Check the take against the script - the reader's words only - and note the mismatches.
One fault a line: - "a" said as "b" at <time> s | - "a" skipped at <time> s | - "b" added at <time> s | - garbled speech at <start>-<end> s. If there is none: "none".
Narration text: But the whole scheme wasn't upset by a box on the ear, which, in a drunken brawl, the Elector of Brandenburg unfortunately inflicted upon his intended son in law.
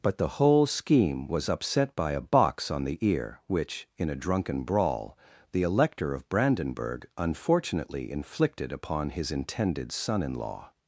- "wasn't" said as "was" at 1.3 s